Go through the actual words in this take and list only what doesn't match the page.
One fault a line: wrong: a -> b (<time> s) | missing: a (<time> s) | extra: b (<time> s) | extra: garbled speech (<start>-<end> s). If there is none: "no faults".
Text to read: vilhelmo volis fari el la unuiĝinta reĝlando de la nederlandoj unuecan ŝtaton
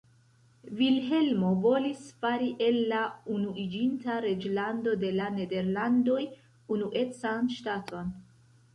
no faults